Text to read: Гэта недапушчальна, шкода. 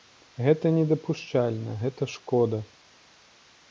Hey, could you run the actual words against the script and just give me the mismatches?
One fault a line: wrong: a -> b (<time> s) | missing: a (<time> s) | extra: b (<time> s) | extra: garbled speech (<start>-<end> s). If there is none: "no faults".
extra: гэта (1.9 s)